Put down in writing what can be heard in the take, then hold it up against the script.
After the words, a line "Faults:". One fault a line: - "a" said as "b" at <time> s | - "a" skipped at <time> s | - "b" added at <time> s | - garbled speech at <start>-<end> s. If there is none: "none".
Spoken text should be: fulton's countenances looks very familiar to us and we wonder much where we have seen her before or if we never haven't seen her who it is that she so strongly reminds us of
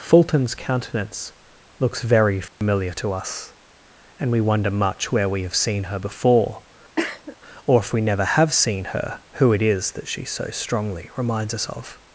fulton's countenance looks very familiar to us and we wonder much where we have seen her before or if we never have seen her who it is that she so strongly reminds us of
Faults:
- "countenances" said as "countenance" at 0.6 s
- "haven't" said as "have" at 8.2 s